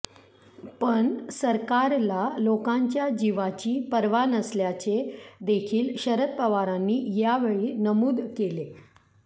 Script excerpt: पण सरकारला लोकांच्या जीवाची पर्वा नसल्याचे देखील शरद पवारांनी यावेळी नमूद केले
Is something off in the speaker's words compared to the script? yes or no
no